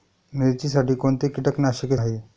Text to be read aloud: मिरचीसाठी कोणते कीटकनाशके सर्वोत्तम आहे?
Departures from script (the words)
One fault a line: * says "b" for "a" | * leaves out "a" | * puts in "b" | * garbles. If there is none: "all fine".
* leaves out "सर्वोत्तम"